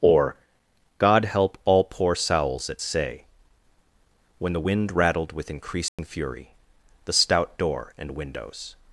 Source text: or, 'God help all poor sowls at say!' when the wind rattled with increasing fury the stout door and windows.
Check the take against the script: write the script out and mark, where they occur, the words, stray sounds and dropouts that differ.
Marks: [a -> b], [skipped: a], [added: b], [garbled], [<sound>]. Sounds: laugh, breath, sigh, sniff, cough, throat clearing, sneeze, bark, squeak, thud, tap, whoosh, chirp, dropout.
or, 'God help all poor sowls at say!' when the wind rattled with increasing [dropout] fury the stout door and windows.